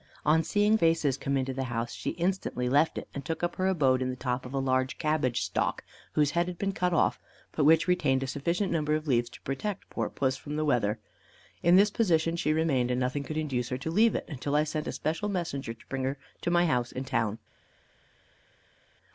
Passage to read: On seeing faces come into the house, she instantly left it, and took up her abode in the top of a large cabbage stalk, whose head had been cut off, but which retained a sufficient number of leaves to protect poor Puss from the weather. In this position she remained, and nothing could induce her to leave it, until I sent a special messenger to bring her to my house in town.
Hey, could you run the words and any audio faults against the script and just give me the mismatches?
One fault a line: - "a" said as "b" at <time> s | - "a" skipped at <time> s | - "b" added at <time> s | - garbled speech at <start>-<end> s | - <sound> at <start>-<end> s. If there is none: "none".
none